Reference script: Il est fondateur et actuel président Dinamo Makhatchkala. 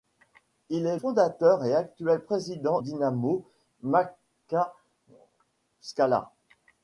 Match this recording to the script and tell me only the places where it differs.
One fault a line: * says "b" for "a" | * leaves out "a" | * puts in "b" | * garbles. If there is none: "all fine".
all fine